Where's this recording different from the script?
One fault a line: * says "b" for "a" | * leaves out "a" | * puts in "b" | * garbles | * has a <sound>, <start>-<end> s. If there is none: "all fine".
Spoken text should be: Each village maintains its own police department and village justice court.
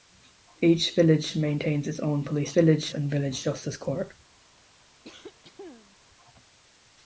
* says "village" for "department"
* has a cough, 5.0-6.0 s